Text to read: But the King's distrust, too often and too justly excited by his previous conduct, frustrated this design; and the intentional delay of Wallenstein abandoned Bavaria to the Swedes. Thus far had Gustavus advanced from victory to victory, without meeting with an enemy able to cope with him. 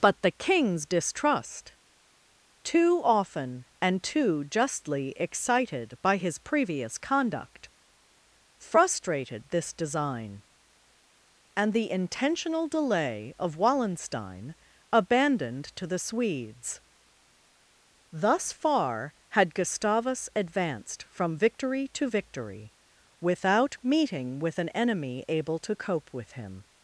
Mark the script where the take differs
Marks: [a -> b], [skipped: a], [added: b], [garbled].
But the King's distrust, too often and too justly excited by his previous conduct, frustrated this design; and the intentional delay of Wallenstein abandoned [skipped: Bavaria] to the Swedes. Thus far had Gustavus advanced from victory to victory, without meeting with an enemy able to cope with him.